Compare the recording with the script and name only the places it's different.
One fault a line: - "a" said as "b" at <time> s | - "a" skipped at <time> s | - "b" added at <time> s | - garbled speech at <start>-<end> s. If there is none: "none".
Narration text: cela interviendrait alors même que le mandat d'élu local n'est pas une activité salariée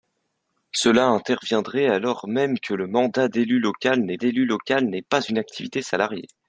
- "d'élu local n'est" added at 4.1 s